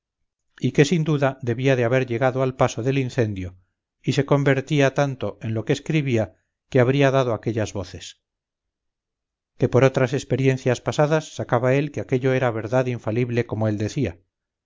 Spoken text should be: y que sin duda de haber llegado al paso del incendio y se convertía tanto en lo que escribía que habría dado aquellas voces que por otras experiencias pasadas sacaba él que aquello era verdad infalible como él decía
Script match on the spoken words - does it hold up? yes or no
no